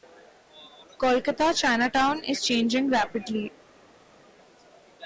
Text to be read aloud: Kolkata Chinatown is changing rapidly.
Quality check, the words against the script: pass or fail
pass